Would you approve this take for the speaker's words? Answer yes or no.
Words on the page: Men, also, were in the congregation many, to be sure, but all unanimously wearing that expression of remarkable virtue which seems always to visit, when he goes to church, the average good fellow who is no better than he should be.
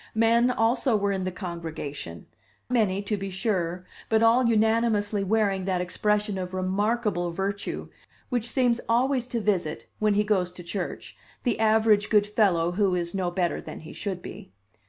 yes